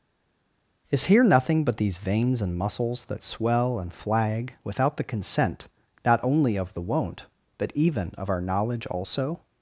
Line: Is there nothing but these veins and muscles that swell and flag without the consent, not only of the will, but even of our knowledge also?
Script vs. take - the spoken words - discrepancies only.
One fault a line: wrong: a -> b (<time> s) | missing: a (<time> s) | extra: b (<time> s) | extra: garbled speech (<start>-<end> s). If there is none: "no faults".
wrong: there -> here (1.1 s)
wrong: will -> won't (6.8 s)